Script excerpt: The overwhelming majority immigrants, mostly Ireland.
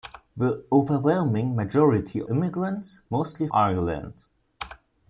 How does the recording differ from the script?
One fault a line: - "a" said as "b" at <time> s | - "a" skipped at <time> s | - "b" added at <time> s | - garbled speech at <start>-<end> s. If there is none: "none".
none